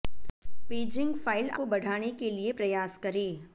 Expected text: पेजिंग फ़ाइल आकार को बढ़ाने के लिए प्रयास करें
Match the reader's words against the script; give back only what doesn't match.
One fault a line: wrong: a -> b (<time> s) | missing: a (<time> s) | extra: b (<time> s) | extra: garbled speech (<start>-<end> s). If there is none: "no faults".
missing: आकार (1.5 s)